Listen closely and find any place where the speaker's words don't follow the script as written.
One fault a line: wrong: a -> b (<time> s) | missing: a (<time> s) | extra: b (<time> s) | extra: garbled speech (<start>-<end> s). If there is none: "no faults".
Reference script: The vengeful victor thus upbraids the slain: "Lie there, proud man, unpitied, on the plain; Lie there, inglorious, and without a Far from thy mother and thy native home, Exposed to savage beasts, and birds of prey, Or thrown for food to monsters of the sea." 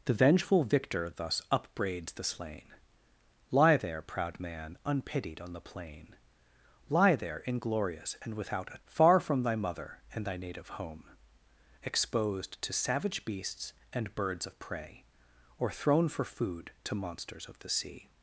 no faults